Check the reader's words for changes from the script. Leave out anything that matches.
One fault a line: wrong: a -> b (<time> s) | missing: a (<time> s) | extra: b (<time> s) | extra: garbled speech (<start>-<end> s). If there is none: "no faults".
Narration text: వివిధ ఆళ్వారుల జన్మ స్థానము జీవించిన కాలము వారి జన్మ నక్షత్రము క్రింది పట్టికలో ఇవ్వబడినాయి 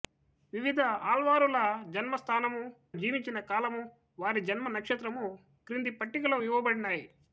no faults